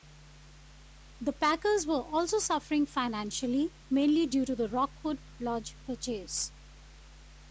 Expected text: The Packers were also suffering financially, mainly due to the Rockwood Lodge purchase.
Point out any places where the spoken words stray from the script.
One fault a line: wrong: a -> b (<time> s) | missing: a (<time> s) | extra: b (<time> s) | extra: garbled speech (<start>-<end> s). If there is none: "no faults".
no faults